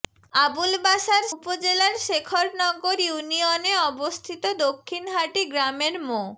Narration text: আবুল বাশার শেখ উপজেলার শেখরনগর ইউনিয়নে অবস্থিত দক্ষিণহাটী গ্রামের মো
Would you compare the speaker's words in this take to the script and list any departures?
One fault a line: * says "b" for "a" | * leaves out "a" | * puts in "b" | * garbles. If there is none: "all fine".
* leaves out "শেখ"